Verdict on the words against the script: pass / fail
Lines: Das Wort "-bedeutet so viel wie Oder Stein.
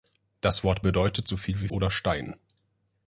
pass